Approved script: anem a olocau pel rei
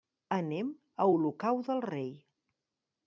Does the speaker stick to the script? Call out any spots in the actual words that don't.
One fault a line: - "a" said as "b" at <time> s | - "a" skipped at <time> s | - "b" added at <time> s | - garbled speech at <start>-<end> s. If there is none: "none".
- "pel" said as "del" at 1.7 s